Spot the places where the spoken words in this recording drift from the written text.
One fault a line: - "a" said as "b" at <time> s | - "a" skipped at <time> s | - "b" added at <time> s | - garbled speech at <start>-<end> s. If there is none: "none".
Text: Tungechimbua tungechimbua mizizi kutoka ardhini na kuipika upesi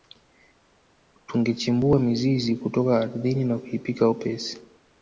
- "tungechimbua" skipped at 2.0 s